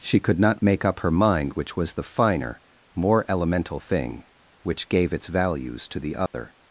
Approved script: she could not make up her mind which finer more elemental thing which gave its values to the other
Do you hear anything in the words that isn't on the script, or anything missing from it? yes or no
yes